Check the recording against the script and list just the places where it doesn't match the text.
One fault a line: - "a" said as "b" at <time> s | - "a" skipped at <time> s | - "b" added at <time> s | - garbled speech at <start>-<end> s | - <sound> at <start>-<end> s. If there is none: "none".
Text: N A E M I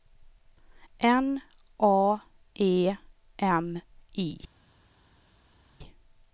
none